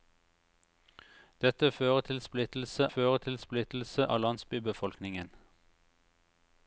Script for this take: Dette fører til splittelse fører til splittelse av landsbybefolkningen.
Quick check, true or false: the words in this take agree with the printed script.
true